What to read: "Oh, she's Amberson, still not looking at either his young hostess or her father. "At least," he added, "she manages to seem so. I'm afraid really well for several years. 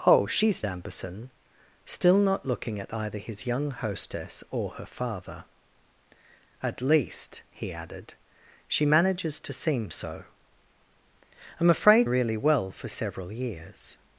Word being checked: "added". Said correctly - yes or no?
yes